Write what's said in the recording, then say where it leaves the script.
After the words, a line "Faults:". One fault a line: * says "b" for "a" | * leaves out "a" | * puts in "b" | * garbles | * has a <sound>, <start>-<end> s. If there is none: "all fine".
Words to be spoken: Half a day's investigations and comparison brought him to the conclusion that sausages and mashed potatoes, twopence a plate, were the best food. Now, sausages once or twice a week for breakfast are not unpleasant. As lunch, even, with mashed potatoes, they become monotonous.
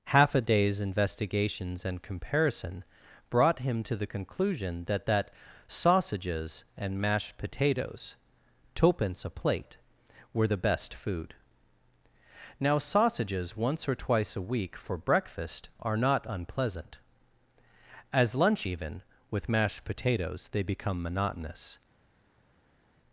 Half a day's investigations and comparison brought him to the conclusion that that sausages and mashed potatoes, twopence a plate, were the best food. Now, sausages once or twice a week for breakfast are not unpleasant. As lunch, even, with mashed potatoes, they become monotonous.
Faults:
* puts in "that"